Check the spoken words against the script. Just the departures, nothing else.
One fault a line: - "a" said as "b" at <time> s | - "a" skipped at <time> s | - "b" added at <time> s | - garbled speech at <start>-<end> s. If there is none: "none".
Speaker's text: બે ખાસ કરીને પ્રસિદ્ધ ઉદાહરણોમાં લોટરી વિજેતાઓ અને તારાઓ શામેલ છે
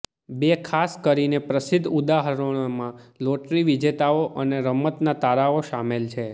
- "રમતના" added at 4.7 s